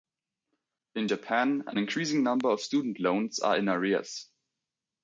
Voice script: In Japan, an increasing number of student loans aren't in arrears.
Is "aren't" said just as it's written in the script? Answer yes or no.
no